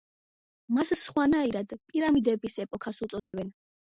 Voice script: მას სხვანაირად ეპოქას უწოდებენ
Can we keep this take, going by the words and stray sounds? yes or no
no